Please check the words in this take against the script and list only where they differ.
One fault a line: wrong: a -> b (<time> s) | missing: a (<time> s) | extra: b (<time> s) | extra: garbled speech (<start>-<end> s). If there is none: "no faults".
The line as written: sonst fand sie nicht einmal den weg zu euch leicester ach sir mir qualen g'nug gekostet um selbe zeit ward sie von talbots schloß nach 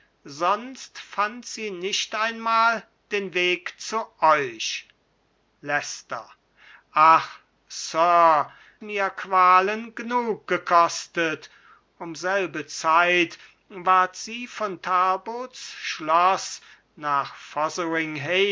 no faults